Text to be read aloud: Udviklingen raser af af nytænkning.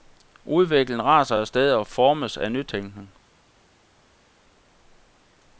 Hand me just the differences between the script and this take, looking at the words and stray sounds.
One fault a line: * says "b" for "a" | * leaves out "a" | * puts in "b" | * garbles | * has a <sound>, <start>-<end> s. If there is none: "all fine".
* puts in "sted og formes"